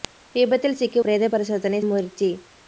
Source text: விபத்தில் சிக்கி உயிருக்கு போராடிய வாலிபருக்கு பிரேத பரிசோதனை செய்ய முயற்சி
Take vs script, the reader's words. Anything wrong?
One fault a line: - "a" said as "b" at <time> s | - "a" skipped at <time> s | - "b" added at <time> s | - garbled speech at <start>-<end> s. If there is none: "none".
- "உயிருக்கு போராடிய வாலிபருக்கு" skipped at 1.0 s
- "செய்ய" skipped at 1.8 s